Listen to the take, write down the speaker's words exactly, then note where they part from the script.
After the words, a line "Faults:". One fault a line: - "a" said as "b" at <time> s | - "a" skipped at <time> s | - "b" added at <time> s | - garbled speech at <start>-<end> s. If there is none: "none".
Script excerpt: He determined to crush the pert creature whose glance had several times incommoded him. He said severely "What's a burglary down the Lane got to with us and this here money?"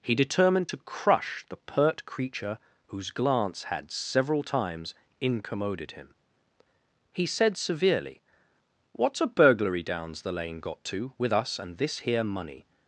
He determined to crush the pert creature whose glance had several times incommoded him. He said severely "What's a burglary downs the Lane got to with us and this here money?"
Faults:
- "down" said as "downs" at 9.8 s